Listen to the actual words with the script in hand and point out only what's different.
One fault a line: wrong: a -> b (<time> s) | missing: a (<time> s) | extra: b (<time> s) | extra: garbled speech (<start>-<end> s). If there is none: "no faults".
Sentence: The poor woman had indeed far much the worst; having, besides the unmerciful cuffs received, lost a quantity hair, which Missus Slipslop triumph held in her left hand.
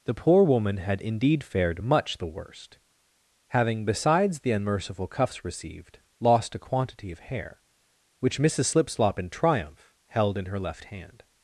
wrong: far -> fared (1.4 s)
extra: of (7.1 s)
extra: in (9.2 s)